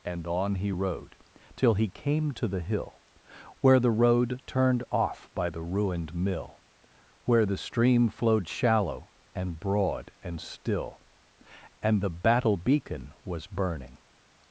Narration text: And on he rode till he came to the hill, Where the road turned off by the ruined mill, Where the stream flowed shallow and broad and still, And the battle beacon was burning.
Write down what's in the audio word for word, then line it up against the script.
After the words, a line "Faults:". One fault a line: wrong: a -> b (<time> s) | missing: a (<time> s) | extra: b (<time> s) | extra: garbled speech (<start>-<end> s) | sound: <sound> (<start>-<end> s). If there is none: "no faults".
And on he rode till he came to the hill, Where the road turned off by the ruined mill, Where the stream flowed shallow and broad and still, And the battle beacon was burning.
Faults:
no faults